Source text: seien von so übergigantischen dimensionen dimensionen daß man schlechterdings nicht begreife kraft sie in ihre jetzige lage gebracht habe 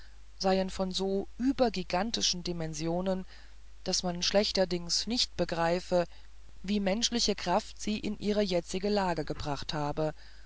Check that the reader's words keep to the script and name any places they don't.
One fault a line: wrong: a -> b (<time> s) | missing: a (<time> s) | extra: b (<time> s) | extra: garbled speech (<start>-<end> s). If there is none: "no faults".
missing: dimensionen (3.3 s)
extra: wie menschliche (6.6 s)